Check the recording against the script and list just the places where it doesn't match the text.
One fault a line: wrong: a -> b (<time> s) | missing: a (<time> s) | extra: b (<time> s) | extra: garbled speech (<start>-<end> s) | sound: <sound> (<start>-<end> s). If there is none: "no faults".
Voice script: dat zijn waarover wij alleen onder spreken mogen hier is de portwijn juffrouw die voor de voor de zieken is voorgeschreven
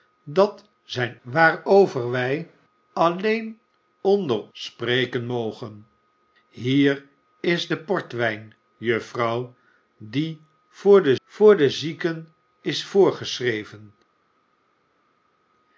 no faults